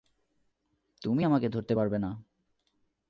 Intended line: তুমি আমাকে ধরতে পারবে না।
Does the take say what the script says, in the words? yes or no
yes